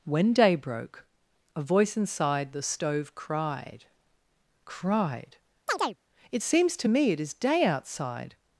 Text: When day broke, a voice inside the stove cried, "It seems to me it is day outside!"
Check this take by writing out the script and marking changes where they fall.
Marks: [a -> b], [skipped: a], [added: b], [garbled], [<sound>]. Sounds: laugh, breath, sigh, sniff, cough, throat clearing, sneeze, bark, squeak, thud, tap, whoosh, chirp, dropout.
When day broke, a voice inside the stove cried, [added: cried] [chirp] "It seems to me it is day outside!"